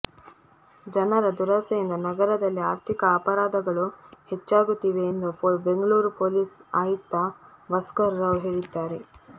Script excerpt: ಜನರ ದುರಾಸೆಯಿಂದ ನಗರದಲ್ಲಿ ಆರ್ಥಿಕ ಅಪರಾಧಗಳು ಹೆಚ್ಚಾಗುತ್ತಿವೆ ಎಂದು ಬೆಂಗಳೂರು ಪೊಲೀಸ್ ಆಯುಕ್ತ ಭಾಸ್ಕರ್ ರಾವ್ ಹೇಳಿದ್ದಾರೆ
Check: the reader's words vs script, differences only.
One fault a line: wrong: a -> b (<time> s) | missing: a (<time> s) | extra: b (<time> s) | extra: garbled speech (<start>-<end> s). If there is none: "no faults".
no faults